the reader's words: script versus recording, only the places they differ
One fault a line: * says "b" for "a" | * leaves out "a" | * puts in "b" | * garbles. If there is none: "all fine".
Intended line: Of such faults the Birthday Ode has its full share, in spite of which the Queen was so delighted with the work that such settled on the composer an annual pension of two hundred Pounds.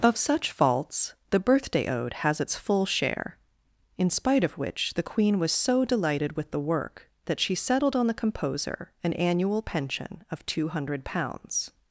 * says "she" for "such"